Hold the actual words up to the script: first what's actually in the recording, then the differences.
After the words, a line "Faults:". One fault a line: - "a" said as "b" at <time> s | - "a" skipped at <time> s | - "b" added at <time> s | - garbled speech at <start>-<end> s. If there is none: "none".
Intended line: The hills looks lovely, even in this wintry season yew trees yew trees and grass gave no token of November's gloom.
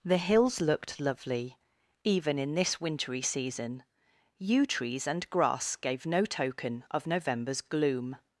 The hills looked lovely, even in this wintry season yew trees and grass gave no token of November's gloom.
Faults:
- "looks" said as "looked" at 0.6 s
- "yew trees" skipped at 5.0 s